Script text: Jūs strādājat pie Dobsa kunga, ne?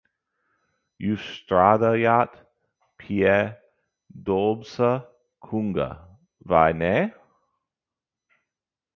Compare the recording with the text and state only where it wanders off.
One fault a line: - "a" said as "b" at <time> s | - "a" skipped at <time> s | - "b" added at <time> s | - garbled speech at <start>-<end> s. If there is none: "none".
- "vai" added at 6.5 s